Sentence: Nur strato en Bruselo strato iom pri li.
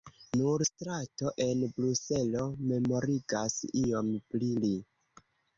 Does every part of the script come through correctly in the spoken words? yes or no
no